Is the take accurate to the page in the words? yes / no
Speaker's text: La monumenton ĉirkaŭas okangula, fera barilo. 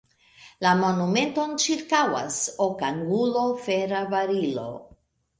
yes